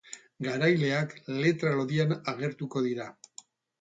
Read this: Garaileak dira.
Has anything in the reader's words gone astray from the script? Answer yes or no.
yes